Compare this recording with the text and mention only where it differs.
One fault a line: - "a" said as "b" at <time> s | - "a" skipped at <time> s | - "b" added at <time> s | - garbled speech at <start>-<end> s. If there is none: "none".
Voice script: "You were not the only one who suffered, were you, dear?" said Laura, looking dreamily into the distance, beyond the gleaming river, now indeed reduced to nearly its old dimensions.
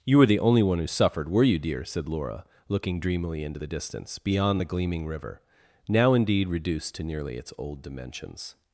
- "not" skipped at 0.2 s